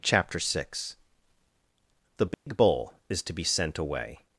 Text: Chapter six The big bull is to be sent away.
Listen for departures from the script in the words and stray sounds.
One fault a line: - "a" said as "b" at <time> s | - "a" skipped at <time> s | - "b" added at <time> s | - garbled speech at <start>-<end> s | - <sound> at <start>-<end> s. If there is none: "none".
- dropout at 2.3-2.5 s